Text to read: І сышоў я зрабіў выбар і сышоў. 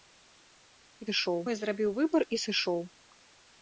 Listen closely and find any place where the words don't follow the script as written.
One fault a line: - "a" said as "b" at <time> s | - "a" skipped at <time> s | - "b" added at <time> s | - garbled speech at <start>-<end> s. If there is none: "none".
none